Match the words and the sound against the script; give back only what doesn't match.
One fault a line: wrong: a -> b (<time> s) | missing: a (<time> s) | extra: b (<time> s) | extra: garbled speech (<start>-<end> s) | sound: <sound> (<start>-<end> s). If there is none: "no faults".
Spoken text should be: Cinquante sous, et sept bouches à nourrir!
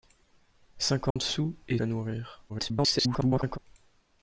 sound: dropout (1.1-1.2 s)
missing: sept bouches (1.8 s)
extra: garbled speech (2.5-3.6 s)